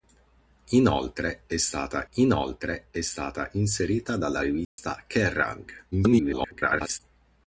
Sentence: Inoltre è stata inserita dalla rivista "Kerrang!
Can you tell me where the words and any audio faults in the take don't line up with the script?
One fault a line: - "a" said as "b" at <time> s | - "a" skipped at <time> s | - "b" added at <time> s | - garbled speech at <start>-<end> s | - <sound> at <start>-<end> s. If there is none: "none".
- "inoltre è stata" added at 2.1 s
- dropout at 4.6-4.8 s
- garbled speech at 5.9-7.0 s